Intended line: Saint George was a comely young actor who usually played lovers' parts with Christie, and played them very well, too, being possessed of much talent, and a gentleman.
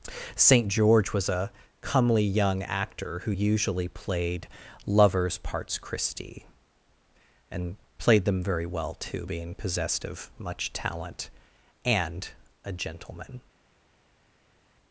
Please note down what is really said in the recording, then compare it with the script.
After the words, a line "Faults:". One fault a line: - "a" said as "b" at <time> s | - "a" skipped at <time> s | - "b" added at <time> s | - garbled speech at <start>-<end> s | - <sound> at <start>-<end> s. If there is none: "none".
Saint George was a comely young actor who usually played lovers' parts Christie, and played them very well, too, being possessed of much talent, and a gentleman.
Faults:
- "with" skipped at 5.8 s